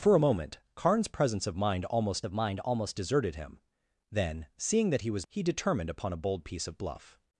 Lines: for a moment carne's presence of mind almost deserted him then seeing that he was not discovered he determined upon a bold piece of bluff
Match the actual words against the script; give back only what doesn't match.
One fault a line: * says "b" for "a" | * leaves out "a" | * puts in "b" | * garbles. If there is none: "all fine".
* puts in "of mind almost"
* leaves out "not discovered"